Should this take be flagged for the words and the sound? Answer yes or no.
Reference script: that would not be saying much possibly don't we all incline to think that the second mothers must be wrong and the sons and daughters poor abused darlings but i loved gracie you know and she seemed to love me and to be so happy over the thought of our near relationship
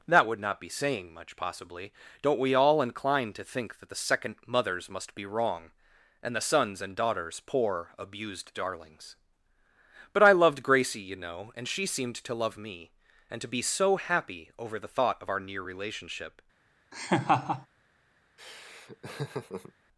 yes